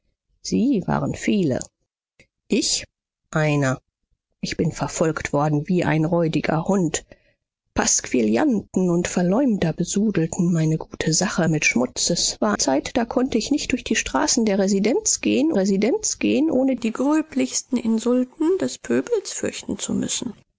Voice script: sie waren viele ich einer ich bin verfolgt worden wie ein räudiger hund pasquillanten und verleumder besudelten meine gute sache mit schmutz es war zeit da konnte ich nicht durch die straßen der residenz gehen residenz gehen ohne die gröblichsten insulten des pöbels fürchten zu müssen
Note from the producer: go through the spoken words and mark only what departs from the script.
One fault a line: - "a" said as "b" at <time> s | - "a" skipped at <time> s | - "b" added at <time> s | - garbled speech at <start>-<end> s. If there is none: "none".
none